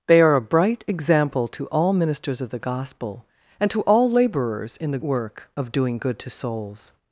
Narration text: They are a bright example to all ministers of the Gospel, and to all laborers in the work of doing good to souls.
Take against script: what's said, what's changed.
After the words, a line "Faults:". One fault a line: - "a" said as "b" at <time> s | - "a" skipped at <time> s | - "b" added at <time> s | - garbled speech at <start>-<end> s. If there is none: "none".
They are a bright example to all ministers of the Gospel, and to all laborers in the work of doing good to souls.
Faults:
none